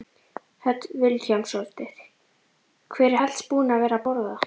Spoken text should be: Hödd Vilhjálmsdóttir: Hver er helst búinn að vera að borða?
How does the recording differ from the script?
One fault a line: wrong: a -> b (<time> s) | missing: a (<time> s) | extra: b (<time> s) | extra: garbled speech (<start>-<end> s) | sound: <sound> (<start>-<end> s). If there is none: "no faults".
no faults